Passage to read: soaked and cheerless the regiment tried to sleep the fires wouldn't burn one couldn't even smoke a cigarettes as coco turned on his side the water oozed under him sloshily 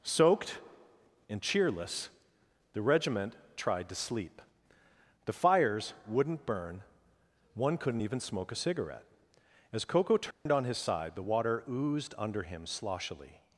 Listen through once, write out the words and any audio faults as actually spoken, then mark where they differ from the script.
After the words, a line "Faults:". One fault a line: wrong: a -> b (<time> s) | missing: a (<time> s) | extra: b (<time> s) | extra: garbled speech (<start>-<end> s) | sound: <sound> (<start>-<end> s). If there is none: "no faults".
soaked and cheerless the regiment tried to sleep the fires wouldn't burn one couldn't even smoke a cigarette as coco turned on his side the water oozed under him sloshily
Faults:
wrong: cigarettes -> cigarette (8.6 s)
sound: dropout (10.3-10.5 s)